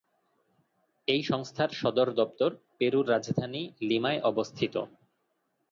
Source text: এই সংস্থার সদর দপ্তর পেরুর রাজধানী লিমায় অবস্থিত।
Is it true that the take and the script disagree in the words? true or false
false